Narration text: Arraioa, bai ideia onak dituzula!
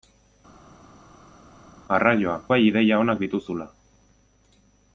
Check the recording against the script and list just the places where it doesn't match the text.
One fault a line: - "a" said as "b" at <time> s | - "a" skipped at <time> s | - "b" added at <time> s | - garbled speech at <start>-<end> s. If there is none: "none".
none